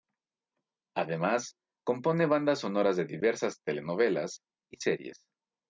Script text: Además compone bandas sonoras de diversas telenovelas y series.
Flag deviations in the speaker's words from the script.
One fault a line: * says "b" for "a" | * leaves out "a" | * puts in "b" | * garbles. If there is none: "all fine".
all fine